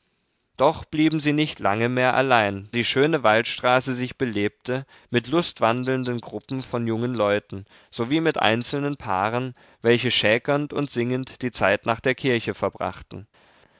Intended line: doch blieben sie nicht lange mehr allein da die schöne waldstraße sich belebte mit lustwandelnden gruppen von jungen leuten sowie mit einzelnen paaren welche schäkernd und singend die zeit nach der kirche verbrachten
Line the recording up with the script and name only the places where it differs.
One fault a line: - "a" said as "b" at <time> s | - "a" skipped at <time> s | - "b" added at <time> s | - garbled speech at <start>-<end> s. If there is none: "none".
- "da" skipped at 2.7 s